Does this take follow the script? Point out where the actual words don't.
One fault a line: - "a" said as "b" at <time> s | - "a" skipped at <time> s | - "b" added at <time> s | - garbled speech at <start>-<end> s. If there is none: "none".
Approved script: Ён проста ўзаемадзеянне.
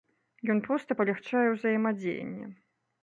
- "палягчае" added at 1.0 s